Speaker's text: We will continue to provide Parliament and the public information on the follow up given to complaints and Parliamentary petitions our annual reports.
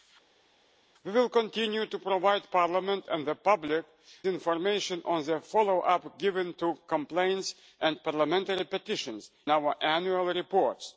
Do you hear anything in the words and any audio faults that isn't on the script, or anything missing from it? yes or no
no